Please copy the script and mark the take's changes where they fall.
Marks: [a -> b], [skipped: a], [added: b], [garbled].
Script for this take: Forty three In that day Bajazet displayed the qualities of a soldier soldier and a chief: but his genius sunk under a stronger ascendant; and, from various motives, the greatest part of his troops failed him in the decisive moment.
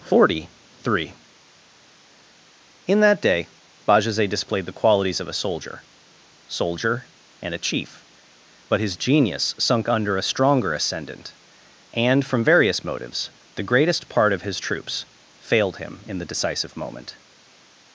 Forty three In that day Bajazet displayed the qualities of a soldier soldier and a chief: but his genius sunk under a stronger ascendant; and, from various motives, the greatest part of his troops failed him in the decisive moment.